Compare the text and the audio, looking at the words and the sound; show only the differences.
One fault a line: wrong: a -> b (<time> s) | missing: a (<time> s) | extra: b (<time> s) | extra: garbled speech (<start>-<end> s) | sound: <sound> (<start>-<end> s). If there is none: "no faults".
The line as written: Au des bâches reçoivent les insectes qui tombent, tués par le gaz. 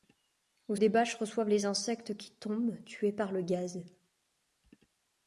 no faults